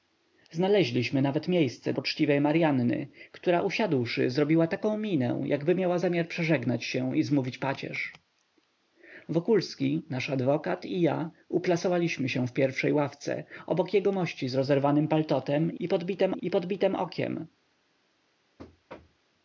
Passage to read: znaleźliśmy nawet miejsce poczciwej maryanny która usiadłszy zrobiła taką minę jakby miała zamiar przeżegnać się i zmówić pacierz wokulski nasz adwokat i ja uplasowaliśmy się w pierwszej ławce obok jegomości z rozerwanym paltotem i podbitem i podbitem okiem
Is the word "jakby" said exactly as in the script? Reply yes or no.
yes